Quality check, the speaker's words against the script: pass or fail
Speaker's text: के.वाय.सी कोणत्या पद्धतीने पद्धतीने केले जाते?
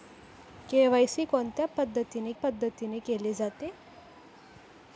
pass